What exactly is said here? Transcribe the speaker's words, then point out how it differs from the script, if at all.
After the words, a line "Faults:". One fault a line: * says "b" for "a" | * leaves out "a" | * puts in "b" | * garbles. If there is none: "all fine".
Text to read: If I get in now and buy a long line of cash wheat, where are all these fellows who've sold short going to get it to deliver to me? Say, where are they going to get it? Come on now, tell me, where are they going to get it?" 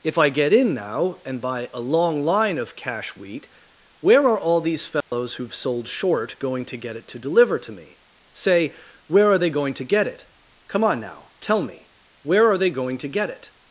If I get in now and buy a long line of cash wheat, where are all these fellows who've sold short going to get it to deliver to me? Say, where are they going to get it? Come on now, tell me, where are they going to get it?"
Faults:
all fine